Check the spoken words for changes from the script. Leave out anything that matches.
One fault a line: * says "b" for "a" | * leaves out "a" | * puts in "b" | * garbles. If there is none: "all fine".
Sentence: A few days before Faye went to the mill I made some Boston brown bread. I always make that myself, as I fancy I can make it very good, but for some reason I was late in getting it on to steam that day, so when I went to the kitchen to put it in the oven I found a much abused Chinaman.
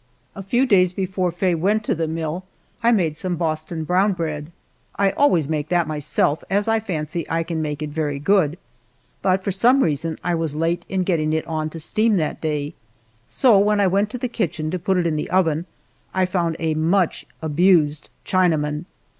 all fine